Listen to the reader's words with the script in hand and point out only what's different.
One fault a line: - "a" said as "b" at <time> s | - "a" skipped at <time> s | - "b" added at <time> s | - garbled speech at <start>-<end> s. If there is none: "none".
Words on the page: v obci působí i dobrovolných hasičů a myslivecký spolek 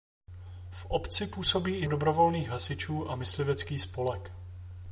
none